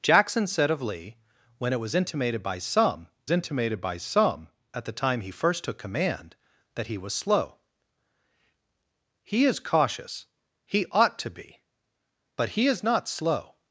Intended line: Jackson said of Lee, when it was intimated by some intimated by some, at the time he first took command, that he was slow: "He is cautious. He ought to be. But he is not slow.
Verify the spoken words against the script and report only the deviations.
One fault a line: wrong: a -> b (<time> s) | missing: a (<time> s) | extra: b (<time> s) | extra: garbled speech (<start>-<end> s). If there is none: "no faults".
no faults